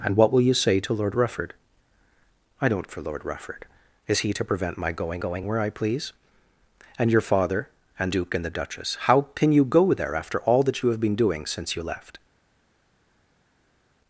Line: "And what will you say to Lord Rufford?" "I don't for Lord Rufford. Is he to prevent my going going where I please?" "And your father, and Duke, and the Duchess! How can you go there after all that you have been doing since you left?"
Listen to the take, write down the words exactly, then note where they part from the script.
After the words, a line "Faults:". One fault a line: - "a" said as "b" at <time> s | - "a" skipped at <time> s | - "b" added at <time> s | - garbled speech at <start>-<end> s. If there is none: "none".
"And what will you say to Lord Rufford?" "I don't for Lord Rufford. Is he to prevent my going going where I please?" "And your father, and Duke, and the Duchess! How can you go there after all that you have been doing since you left?"
Faults:
none